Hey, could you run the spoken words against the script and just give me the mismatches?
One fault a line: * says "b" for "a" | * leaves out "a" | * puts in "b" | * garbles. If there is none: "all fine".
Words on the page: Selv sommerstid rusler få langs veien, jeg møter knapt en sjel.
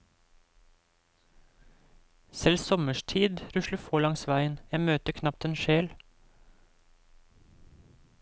all fine